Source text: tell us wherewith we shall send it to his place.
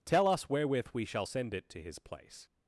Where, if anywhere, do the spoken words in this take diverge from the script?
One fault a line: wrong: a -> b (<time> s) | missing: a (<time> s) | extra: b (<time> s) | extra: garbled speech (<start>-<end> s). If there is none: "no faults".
no faults